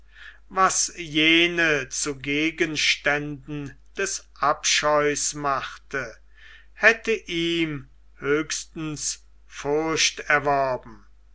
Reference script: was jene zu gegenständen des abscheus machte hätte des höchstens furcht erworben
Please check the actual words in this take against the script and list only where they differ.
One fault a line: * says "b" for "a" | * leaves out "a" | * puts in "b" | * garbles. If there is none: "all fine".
* says "ihm" for "des"